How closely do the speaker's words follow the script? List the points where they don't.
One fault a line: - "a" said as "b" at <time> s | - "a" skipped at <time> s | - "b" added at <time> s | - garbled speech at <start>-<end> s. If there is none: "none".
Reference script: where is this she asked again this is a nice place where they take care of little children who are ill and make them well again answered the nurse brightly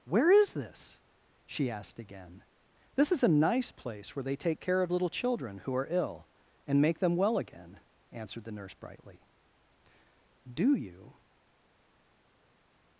- "do you" added at 10.5 s